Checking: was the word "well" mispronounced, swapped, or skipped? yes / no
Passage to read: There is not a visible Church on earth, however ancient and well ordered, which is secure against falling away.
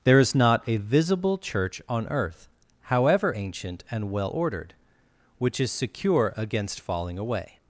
no